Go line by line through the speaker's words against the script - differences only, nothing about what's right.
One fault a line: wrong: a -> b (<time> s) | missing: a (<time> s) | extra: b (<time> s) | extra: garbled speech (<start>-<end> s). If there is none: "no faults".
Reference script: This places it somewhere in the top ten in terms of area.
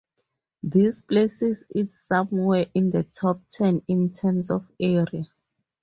no faults